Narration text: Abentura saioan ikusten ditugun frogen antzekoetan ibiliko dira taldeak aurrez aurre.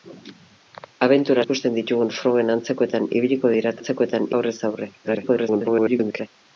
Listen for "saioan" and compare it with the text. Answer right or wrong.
wrong